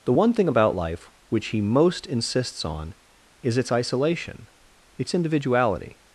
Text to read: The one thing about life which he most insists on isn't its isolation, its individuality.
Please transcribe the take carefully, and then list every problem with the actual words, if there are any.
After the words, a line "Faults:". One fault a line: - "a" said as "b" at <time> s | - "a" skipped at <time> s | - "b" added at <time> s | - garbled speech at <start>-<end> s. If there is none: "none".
The one thing about life which he most insists on is its isolation, its individuality.
Faults:
- "isn't" said as "is" at 3.4 s